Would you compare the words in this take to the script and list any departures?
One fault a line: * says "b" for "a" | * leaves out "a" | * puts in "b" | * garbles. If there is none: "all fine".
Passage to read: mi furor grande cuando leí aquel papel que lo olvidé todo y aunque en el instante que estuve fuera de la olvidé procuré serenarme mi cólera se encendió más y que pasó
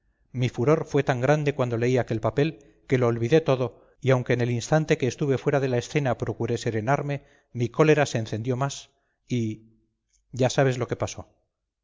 * puts in "fue tan"
* says "escena" for "olvidé"
* puts in "ya sabes lo"